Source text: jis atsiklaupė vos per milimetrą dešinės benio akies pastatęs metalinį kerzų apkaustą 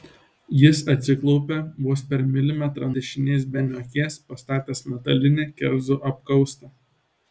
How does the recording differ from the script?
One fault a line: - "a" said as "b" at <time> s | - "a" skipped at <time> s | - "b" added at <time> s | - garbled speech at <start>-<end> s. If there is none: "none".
none